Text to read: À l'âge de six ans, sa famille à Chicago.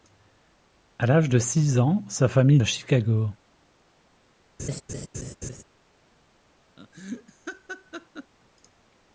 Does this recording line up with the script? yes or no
yes